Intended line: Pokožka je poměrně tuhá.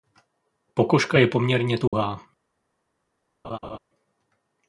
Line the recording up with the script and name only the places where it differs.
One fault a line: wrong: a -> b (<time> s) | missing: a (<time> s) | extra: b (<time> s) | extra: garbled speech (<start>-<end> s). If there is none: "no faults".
no faults